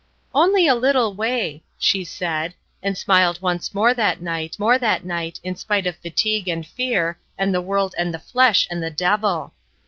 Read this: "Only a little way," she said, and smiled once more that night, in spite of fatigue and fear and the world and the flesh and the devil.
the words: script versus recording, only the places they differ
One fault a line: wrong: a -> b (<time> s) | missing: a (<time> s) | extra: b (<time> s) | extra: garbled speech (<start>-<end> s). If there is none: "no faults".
extra: more that night (4.6 s)